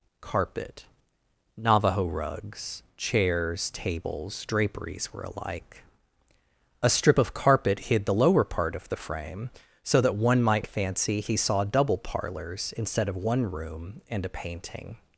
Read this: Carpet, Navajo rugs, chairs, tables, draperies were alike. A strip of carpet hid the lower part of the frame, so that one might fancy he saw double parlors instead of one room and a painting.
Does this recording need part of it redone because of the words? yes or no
no